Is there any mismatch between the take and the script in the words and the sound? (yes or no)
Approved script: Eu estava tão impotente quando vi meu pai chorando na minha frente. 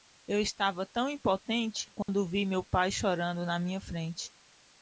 yes